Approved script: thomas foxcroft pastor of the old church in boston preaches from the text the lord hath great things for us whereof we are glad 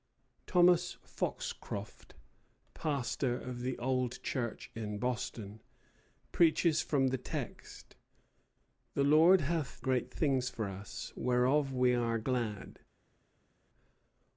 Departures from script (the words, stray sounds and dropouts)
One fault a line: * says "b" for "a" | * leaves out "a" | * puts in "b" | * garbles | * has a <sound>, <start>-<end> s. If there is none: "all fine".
all fine